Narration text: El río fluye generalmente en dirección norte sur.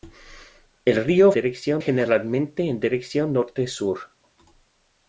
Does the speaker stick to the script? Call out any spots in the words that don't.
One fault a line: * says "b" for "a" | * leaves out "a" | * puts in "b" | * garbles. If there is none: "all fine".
* says "dirección" for "fluye"